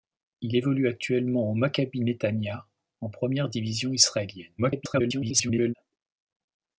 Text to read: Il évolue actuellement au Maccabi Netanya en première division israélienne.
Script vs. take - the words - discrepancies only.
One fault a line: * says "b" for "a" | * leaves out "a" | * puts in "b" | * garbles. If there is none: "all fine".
* garbles